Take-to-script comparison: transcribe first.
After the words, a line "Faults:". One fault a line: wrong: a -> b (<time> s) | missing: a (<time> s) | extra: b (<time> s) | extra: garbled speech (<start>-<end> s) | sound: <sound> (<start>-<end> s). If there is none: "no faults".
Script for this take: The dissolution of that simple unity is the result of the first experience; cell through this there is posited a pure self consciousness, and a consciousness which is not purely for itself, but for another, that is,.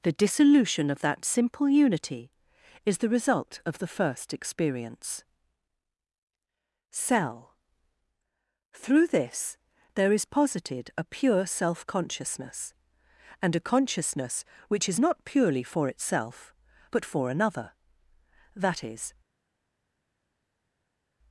The dissolution of that simple unity is the result of the first experience; cell through this there is posited a pure self consciousness, and a consciousness which is not purely for itself, but for another, that is,.
Faults:
no faults